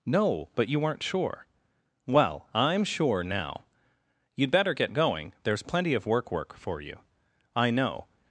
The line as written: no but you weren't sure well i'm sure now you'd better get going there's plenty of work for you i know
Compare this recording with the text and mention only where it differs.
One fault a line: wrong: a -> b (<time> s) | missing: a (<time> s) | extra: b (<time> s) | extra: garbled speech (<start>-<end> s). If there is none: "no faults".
extra: work (6.3 s)